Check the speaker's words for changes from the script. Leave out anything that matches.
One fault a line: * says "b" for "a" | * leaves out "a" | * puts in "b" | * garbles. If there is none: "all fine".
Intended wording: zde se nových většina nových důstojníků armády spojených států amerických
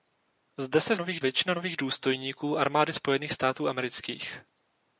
all fine